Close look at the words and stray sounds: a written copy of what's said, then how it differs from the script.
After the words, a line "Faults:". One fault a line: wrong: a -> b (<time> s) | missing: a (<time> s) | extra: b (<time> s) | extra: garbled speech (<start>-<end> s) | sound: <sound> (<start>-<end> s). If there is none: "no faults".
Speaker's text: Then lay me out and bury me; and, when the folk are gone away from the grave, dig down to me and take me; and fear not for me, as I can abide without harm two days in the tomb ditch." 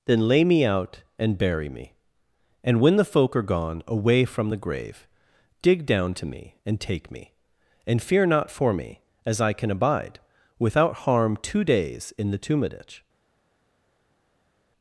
Then lay me out and bury me; and, when the folk are gone away from the grave, dig down to me and take me; and fear not for me, as I can abide without harm two days in the tomb ditch."
Faults:
no faults